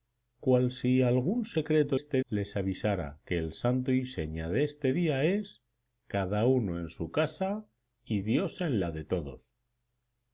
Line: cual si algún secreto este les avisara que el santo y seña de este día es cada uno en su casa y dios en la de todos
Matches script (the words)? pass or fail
pass